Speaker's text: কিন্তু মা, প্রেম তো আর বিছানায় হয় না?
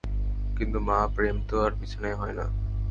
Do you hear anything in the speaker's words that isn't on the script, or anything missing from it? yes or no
no